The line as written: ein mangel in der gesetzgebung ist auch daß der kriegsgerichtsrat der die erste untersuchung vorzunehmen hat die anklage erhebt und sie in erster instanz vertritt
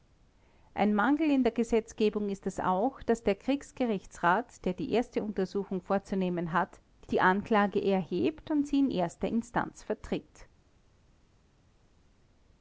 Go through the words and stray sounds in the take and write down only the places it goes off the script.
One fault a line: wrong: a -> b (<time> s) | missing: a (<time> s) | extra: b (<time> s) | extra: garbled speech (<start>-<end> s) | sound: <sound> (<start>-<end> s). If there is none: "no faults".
extra: es (2.5 s)